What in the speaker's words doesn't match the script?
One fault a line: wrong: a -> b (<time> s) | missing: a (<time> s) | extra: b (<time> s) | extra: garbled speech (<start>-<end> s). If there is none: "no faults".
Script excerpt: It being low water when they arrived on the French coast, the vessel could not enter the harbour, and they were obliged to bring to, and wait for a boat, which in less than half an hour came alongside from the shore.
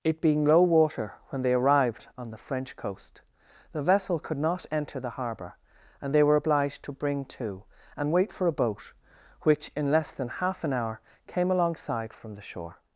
no faults